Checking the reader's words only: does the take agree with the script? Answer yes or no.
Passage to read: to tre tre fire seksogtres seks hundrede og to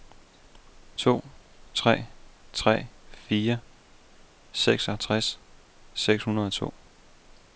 yes